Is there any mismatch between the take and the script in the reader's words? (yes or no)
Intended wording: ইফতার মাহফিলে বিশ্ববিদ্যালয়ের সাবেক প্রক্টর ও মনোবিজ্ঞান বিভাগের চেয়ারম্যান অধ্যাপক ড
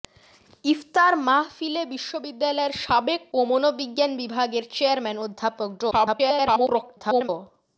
yes